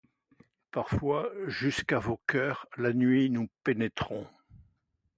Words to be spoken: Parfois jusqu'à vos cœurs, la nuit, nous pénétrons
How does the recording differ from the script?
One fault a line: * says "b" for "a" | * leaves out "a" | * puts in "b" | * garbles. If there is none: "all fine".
all fine